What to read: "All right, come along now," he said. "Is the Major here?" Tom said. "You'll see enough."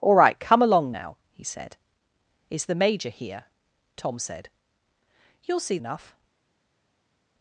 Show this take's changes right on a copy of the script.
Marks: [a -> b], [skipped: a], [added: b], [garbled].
"All right, come along now," he said. "Is the Major here?" Tom said. "You'll see enough."